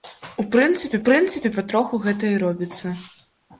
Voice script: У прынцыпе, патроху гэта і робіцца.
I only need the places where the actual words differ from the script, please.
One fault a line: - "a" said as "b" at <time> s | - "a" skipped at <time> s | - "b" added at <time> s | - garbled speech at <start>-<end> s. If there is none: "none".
- "прынцыпе" added at 1.1 s